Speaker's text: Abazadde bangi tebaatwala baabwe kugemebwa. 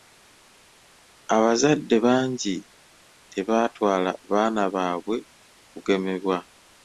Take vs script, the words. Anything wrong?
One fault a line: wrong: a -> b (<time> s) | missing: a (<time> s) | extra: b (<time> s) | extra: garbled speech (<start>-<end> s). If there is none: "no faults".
extra: baana (4.3 s)